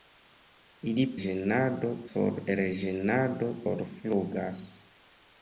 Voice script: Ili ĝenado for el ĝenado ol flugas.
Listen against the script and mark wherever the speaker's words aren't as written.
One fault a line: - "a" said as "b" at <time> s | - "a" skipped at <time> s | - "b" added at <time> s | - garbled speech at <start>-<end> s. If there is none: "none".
none